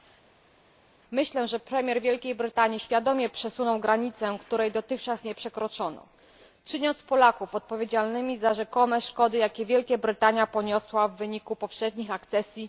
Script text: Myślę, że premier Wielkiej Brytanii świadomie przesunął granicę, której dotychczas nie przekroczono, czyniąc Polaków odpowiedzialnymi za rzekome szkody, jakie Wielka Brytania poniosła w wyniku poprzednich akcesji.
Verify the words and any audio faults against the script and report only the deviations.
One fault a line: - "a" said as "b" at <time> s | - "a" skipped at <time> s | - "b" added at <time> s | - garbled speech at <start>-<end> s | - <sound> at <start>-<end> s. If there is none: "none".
none